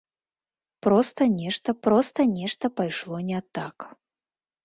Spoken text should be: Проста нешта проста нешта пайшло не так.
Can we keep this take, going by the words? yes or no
yes